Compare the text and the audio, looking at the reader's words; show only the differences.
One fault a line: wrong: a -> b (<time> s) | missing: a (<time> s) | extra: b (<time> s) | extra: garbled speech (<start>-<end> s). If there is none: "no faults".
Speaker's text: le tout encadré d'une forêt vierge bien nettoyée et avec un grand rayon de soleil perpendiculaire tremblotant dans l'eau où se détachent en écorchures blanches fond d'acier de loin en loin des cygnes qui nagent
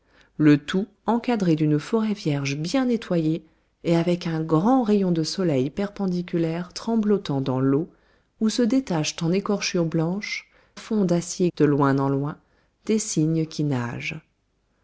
no faults